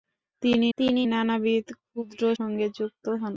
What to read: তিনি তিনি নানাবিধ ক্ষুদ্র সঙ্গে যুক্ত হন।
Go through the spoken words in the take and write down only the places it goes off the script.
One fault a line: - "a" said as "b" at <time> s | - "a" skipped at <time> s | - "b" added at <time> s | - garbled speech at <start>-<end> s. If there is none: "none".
none